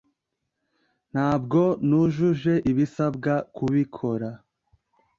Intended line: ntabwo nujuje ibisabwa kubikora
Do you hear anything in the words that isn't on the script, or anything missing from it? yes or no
no